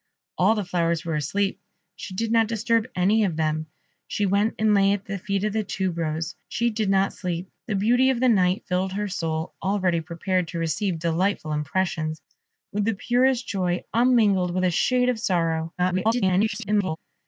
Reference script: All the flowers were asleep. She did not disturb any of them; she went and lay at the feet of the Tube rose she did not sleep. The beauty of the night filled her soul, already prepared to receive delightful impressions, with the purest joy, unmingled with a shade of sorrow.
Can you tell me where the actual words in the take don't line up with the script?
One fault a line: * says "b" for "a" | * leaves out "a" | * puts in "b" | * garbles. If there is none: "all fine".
* garbles